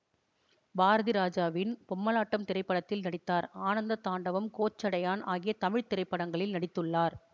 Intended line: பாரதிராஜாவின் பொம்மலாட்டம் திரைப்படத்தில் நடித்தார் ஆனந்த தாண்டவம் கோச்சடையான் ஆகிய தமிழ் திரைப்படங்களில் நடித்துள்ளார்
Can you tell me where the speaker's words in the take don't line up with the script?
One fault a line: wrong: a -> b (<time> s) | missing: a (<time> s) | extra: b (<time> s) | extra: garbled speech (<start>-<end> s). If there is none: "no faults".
no faults